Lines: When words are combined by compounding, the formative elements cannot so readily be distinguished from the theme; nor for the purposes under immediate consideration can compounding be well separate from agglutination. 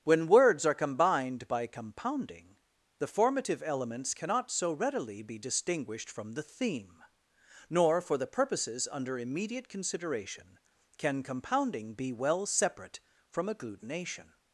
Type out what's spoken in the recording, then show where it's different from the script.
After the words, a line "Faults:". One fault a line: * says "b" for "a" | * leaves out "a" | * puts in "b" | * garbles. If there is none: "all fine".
When words are combined by compounding, the formative elements cannot so readily be distinguished from the theme; nor for the purposes under immediate consideration can compounding be well separate from agglutination.
Faults:
all fine